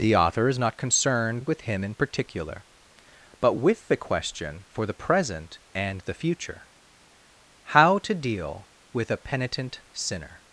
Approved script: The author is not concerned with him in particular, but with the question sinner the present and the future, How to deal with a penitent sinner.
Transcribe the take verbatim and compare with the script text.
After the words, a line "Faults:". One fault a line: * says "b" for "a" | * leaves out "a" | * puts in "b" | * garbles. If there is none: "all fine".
The author is not concerned with him in particular, but with the question for the present and the future, How to deal with a penitent sinner.
Faults:
* says "for" for "sinner"